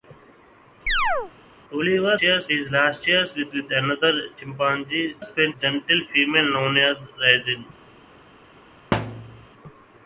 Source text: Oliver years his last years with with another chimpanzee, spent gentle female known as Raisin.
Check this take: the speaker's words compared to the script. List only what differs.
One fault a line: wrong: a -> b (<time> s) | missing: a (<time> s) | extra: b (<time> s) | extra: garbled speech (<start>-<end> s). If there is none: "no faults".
no faults